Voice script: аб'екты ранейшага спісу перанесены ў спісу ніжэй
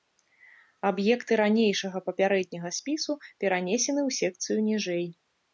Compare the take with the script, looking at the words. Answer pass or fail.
fail